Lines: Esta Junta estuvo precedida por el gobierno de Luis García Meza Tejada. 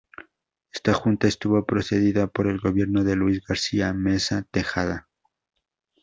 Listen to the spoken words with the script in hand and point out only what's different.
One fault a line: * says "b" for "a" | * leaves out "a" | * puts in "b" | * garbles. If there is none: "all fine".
all fine